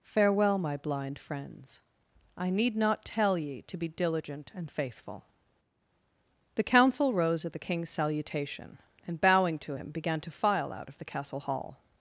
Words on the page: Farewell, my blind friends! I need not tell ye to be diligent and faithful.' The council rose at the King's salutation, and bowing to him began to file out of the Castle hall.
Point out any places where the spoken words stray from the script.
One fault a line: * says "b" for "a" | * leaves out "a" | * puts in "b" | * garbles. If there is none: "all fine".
all fine